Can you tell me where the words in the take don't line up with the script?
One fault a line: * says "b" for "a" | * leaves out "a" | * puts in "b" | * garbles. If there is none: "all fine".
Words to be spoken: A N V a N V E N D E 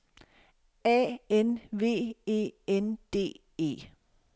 * leaves out "a N V"